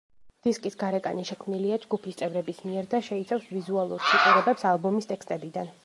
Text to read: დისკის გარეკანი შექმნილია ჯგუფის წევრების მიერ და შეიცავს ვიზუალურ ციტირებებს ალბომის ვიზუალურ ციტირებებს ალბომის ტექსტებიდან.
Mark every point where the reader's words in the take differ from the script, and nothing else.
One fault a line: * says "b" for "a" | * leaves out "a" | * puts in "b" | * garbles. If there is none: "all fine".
* leaves out "ვიზუალურ ციტირებებს ალბომის"